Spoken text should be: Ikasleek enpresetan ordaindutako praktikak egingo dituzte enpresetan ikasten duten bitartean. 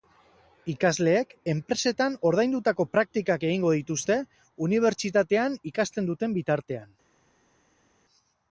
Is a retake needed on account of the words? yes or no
yes